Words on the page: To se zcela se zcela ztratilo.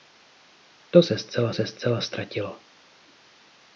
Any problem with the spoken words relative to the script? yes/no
no